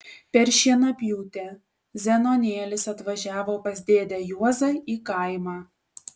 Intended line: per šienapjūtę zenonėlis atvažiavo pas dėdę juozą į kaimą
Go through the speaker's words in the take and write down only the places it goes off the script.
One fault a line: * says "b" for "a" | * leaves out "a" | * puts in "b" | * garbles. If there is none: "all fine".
all fine